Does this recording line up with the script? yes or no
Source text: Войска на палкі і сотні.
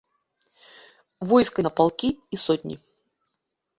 yes